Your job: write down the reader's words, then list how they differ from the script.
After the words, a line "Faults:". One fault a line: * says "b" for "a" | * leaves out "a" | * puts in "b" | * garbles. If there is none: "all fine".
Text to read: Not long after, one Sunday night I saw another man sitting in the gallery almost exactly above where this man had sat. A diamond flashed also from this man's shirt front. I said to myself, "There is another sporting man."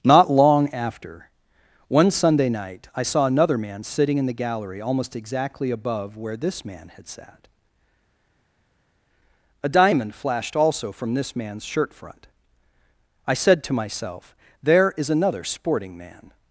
Not long after, one Sunday night I saw another man sitting in the gallery almost exactly above where this man had sat. A diamond flashed also from this man's shirt front. I said to myself, "There is another sporting man."
Faults:
all fine